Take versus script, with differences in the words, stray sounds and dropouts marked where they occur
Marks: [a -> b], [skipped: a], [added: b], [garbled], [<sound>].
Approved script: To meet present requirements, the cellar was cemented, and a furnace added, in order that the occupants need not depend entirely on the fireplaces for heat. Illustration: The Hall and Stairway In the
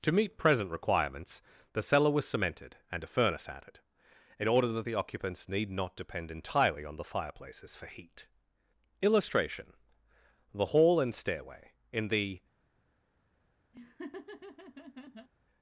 To meet present requirements, the cellar was cemented, and a furnace added, in order that the occupants need not depend entirely on the fireplaces for heat. Illustration: The Hall and Stairway In the [laugh]